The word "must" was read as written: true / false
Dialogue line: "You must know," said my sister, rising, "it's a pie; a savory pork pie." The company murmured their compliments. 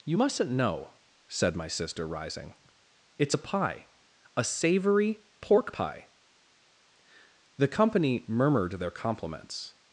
false